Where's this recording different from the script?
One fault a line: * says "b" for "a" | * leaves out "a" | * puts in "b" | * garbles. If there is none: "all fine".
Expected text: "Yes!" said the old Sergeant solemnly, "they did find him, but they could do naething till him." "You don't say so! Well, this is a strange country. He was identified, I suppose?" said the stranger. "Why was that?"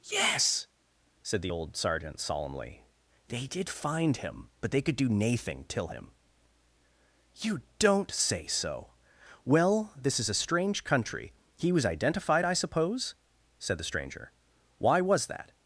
all fine